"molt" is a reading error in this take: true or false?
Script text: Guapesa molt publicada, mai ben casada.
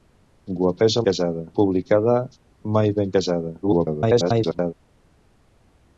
true